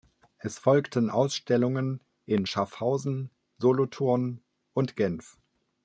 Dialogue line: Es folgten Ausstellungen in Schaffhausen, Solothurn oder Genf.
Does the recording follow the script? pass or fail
fail